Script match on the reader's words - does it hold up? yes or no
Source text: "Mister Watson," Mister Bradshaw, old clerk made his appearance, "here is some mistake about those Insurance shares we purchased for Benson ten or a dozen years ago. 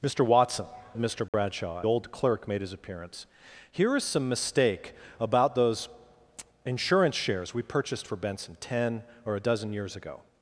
yes